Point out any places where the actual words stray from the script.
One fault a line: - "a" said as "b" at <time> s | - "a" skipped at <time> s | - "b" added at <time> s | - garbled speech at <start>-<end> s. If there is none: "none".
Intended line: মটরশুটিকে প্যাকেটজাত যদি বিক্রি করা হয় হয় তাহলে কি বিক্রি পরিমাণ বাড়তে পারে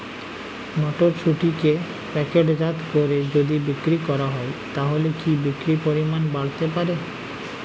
- "করে" added at 2.9 s
- "হয়" skipped at 4.5 s